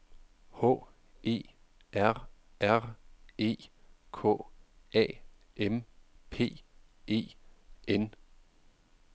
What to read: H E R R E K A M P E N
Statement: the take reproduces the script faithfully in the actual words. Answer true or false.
true